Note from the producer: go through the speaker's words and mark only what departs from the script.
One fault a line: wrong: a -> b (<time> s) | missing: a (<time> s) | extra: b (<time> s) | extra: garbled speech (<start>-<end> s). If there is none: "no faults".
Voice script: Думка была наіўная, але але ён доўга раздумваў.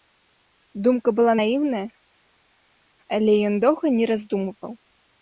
missing: але (3.4 s)
extra: не (4.0 s)